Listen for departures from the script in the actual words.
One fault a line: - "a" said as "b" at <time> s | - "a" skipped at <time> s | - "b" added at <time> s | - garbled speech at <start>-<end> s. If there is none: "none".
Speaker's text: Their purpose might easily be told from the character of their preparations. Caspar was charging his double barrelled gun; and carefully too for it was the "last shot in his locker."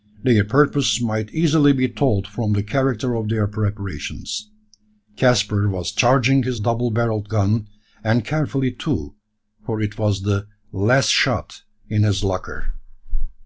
none